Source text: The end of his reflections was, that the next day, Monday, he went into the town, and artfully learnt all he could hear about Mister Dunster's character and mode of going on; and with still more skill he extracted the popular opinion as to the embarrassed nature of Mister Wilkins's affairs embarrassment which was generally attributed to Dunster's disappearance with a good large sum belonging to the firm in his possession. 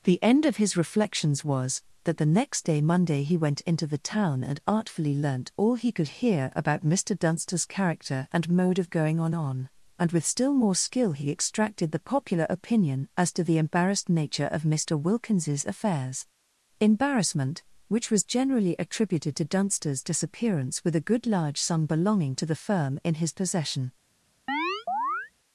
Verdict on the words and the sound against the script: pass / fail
fail